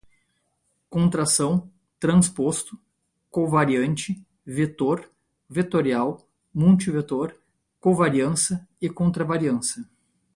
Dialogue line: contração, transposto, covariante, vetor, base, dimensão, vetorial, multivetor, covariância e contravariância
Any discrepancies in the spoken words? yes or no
yes